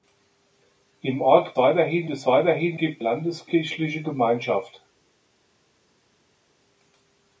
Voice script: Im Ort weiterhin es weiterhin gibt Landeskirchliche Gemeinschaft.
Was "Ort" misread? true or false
false